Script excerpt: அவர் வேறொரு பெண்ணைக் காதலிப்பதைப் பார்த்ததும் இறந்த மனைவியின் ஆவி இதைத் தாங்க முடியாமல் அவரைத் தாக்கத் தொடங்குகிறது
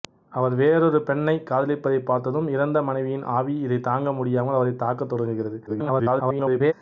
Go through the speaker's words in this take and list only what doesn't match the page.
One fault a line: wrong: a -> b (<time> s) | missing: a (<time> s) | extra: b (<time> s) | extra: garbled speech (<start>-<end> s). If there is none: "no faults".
extra: garbled speech (5.7-6.7 s)